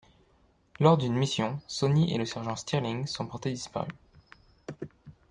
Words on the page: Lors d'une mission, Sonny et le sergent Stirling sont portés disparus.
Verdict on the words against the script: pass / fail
pass